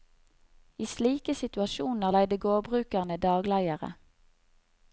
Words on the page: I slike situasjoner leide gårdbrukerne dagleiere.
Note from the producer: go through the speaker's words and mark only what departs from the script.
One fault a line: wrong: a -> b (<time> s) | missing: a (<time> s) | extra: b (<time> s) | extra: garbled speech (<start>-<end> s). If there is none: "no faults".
no faults